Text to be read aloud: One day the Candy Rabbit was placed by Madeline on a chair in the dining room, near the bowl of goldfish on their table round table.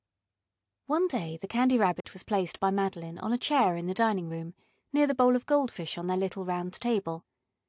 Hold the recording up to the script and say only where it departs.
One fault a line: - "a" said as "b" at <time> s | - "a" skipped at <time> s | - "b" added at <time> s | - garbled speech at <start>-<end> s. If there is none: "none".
- "table" said as "little" at 6.2 s